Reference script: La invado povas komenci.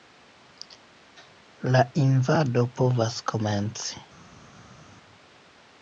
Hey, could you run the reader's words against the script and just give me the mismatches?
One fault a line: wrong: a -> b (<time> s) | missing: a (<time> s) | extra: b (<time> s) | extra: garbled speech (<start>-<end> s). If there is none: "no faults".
no faults